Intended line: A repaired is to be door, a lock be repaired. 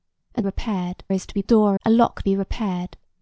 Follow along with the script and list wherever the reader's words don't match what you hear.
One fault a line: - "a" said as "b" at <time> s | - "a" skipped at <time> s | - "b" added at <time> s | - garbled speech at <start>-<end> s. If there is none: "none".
none